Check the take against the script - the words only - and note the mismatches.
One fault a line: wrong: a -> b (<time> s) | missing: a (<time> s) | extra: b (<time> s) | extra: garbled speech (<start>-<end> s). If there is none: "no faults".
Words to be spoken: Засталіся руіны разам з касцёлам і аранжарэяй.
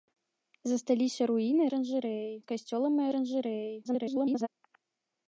wrong: разам -> аранжарэяй (1.7 s)
extra: garbled speech (3.8-4.5 s)